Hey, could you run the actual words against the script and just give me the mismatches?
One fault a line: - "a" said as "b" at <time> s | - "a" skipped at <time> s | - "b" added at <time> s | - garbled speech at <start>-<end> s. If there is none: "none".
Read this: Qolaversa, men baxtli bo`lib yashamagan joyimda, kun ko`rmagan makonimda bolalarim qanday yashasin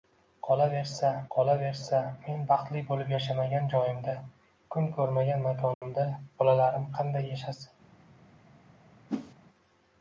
- "qolaversa" added at 1.3 s